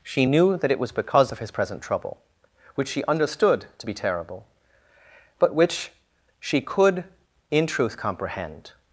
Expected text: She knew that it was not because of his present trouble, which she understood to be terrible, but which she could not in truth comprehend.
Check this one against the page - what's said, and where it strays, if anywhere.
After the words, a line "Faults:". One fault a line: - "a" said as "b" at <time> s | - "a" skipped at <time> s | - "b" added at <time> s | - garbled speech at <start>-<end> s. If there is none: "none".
She knew that it was because of his present trouble, which she understood to be terrible, but which she could in truth comprehend.
Faults:
- "not" skipped at 0.9 s
- "not" skipped at 7.1 s